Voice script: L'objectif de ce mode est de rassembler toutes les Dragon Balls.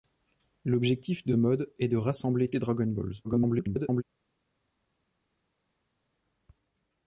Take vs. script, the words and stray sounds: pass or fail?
fail